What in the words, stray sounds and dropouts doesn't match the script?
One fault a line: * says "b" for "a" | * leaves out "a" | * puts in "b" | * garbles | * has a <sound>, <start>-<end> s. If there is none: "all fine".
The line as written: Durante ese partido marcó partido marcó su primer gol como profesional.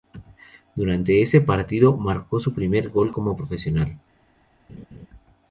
* leaves out "partido marcó"
* has a laugh, 4.7-5.1 s